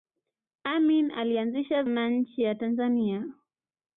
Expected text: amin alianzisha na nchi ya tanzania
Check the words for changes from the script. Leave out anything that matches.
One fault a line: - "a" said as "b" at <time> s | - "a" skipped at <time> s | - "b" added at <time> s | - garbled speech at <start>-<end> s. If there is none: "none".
none